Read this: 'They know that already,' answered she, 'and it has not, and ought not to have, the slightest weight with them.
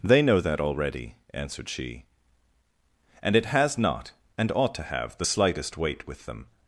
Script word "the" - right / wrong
right